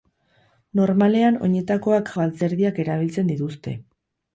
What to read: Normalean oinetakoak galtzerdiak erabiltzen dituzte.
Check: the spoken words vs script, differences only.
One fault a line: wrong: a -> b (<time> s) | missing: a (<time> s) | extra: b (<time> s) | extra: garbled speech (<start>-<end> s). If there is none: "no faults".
no faults